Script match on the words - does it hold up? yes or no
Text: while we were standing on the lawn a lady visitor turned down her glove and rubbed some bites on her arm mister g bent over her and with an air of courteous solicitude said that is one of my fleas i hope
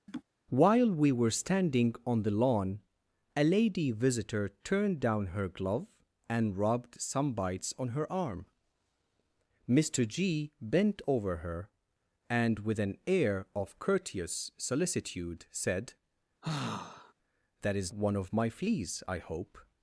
yes